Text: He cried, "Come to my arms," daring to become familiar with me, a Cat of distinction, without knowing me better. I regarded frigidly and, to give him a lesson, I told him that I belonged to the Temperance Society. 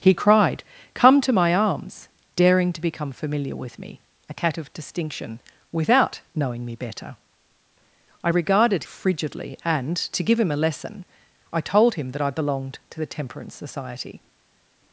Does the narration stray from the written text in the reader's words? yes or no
no